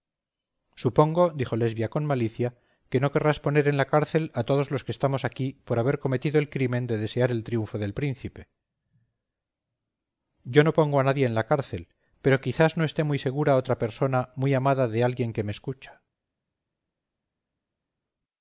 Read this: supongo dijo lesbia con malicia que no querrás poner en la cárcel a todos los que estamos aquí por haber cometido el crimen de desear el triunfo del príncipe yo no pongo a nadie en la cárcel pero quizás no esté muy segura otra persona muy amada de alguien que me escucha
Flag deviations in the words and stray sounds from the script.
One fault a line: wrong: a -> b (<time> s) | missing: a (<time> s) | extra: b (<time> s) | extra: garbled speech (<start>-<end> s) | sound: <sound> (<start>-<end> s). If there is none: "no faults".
no faults